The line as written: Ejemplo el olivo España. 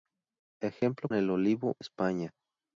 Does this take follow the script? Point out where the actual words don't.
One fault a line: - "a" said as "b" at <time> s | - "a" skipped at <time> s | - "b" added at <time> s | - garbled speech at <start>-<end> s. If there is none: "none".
none